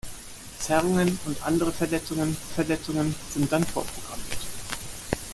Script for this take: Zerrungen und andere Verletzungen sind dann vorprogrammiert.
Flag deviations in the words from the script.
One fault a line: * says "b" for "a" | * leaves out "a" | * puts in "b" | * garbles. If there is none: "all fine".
* puts in "Verletzungen"